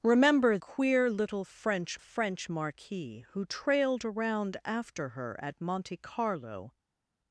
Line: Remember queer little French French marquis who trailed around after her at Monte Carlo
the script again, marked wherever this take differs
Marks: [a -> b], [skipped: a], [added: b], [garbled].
Remember queer little French French marquis who trailed around after her at Monte Carlo